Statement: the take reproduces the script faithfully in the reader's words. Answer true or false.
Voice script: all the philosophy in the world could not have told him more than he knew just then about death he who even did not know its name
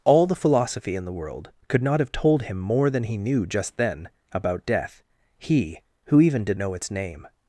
false